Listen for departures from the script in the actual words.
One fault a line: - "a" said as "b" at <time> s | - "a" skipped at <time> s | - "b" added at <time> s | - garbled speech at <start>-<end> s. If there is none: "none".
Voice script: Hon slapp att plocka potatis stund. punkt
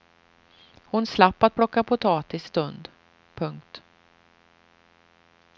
none